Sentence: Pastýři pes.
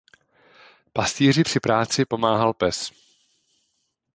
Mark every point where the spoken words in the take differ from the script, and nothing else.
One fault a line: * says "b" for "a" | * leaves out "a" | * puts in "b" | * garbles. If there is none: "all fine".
* puts in "při práci pomáhal"